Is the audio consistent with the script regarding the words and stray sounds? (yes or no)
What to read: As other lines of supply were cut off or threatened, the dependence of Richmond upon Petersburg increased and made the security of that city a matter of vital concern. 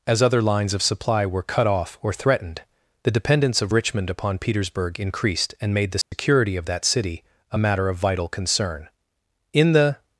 no